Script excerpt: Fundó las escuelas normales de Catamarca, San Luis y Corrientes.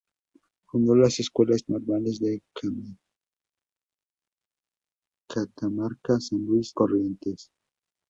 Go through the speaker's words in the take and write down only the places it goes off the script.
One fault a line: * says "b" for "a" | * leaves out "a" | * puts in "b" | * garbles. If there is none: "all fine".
* leaves out "y"